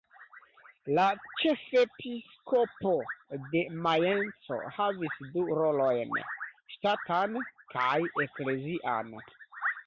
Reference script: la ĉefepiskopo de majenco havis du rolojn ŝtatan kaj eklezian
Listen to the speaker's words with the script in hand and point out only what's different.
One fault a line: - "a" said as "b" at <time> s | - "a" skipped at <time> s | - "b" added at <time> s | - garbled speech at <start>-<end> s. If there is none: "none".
none